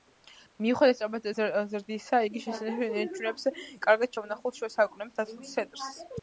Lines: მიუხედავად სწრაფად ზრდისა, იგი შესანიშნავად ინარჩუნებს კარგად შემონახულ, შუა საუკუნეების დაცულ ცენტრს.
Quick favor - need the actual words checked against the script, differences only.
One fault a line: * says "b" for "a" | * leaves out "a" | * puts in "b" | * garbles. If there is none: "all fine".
all fine